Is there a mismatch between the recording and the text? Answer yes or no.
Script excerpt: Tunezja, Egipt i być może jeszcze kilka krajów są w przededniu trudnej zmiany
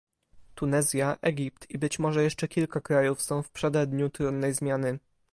no